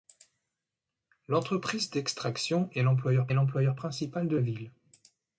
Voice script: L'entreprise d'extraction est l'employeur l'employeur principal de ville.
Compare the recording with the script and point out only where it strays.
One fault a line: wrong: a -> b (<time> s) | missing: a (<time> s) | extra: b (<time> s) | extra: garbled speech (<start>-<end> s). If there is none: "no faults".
no faults